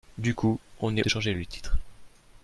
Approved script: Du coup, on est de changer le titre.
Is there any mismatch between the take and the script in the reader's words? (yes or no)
no